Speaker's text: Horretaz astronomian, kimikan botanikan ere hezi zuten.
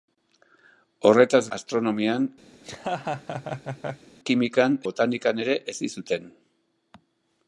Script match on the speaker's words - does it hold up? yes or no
yes